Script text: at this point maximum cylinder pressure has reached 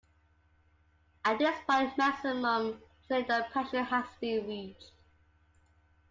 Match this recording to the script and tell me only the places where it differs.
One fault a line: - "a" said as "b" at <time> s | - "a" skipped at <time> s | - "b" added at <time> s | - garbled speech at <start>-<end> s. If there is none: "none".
- "been" added at 4.1 s